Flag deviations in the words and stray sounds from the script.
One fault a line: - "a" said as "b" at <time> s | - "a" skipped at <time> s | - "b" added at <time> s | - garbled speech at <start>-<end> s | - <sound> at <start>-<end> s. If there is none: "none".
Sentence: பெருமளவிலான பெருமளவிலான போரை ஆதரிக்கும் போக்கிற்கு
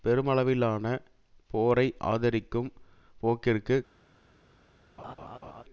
- "பெருமளவிலான" skipped at 0.8 s
- laugh at 5.0-5.6 s